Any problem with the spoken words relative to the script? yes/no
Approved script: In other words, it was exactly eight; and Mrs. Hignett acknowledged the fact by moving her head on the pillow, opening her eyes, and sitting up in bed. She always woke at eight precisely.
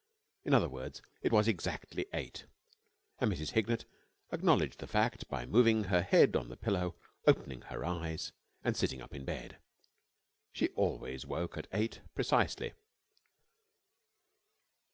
no